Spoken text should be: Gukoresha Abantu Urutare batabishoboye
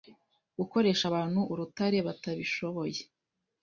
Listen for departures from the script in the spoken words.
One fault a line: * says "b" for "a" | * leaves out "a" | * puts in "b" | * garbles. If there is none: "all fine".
all fine